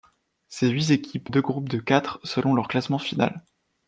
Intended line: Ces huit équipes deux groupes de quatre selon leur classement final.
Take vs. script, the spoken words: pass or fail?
pass